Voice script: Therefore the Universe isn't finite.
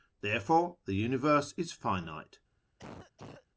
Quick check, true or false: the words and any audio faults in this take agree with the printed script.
false